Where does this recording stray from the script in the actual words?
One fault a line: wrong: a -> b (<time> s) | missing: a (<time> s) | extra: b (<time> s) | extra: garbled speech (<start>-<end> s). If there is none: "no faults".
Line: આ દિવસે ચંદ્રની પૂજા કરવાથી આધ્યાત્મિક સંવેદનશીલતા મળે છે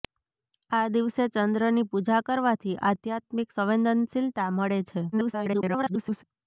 extra: garbled speech (5.1-6.2 s)